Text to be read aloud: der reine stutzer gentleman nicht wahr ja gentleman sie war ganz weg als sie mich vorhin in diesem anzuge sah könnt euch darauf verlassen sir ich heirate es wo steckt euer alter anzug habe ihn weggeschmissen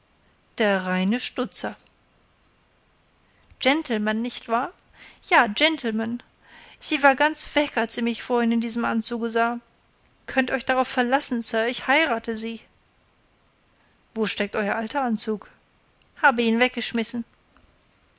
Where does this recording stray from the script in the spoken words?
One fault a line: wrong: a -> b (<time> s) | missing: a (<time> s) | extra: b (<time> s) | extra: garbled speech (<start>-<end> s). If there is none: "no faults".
wrong: es -> sie (12.4 s)